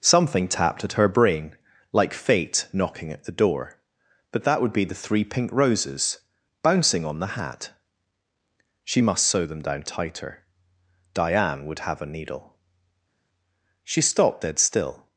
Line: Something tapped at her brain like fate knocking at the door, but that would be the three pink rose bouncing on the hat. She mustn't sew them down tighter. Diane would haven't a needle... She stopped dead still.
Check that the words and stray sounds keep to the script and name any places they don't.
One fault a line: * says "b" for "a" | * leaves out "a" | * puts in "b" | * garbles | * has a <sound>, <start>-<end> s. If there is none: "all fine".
* says "roses" for "rose"
* says "must" for "mustn't"
* says "have" for "haven't"